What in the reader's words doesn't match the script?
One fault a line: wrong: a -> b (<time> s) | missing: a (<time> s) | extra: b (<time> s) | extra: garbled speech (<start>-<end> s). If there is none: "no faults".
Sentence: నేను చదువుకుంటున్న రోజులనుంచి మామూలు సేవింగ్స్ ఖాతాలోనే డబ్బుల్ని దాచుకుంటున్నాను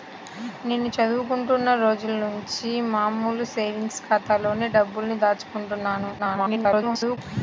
extra: garbled speech (6.2-7.2 s)